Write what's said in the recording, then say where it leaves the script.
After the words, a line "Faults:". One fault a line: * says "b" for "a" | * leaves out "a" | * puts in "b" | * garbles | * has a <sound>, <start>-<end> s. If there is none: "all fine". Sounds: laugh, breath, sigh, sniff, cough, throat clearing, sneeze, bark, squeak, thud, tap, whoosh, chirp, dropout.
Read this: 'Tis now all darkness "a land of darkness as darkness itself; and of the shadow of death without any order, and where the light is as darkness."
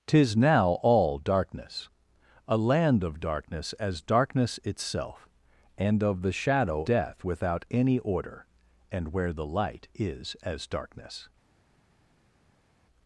'Tis now all darkness "a land of darkness as darkness itself; and of the shadow death without any order, and where the light is as darkness."
Faults:
* leaves out "of"